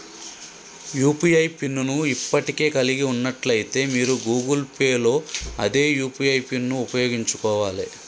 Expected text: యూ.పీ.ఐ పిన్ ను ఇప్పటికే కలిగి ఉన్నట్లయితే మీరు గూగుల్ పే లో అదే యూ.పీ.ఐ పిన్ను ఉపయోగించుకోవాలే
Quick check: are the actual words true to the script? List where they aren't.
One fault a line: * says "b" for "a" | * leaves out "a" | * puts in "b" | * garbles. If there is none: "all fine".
all fine